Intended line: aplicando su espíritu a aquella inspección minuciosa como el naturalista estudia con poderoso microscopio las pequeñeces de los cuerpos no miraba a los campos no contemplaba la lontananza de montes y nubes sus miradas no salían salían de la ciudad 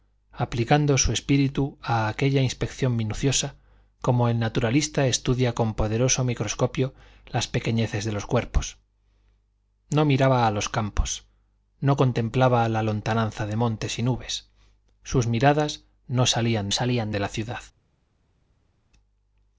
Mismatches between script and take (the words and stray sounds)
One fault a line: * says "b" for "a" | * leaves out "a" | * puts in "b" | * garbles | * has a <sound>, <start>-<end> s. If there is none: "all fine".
all fine